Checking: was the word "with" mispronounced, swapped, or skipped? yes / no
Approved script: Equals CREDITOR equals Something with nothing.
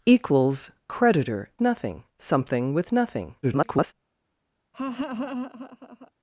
no